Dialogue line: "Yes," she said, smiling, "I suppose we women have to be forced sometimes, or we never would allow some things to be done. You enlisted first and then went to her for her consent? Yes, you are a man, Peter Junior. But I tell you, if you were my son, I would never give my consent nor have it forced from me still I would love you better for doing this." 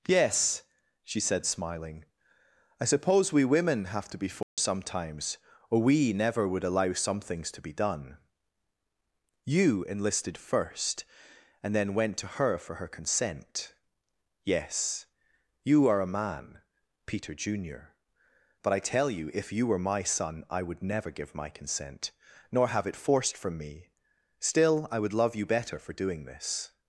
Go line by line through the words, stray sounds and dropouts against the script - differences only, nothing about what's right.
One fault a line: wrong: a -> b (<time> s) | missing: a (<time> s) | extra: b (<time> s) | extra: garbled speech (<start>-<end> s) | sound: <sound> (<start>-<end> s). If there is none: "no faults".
sound: dropout (4.4-4.6 s)